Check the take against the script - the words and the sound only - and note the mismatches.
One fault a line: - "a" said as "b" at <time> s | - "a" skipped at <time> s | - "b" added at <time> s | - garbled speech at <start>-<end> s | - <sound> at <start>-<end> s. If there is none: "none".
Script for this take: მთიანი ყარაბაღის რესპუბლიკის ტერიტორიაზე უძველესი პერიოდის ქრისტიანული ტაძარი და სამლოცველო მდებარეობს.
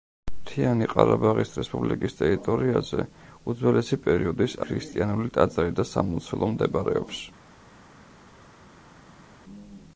none